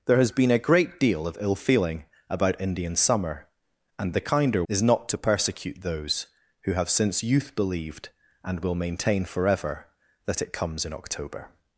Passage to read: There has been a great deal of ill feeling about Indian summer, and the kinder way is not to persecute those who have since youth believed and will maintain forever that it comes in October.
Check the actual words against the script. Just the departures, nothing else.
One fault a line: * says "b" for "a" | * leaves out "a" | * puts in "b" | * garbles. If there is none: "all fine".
* leaves out "way"